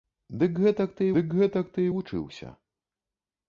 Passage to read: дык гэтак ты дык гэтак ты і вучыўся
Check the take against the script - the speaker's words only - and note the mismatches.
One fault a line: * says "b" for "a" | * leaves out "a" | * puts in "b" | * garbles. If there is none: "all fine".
all fine